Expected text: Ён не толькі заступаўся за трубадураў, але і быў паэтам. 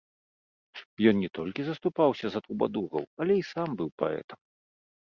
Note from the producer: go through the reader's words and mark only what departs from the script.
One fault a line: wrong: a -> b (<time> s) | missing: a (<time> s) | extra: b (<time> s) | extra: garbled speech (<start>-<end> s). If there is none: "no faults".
extra: сам (3.5 s)